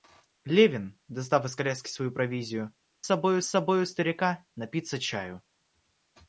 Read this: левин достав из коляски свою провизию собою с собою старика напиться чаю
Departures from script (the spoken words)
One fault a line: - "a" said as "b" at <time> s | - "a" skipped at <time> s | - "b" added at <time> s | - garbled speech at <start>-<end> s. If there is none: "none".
none